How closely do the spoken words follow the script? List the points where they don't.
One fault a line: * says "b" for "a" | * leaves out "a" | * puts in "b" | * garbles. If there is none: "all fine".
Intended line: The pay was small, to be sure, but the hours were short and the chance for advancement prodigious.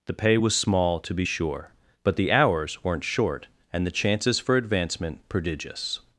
* says "weren't" for "were"
* says "chances" for "chance"